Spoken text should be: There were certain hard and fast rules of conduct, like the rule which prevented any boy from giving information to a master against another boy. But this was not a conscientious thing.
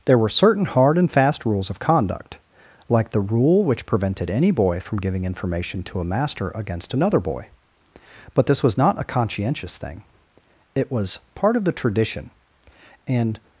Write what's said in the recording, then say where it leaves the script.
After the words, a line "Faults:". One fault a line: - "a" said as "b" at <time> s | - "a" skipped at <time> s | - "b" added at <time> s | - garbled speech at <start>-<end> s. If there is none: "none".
There were certain hard and fast rules of conduct, like the rule which prevented any boy from giving information to a master against another boy. But this was not a conscientious thing. It was part of the tradition, and
Faults:
- "It was part of the tradition and" added at 10.7 s